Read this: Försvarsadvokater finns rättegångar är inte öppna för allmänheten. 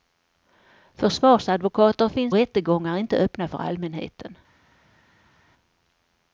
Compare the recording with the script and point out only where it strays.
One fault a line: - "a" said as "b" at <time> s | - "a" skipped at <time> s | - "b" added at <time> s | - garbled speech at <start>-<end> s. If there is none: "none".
none